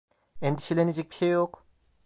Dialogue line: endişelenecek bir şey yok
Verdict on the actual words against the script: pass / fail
pass